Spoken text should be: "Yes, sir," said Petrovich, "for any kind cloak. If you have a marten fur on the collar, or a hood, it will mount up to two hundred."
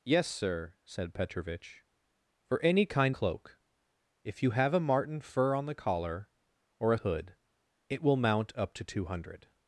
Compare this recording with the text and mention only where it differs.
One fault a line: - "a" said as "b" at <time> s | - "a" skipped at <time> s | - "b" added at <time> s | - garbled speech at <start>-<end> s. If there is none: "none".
none